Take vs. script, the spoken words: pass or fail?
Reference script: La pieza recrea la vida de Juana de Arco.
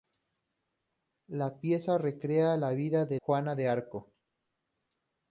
pass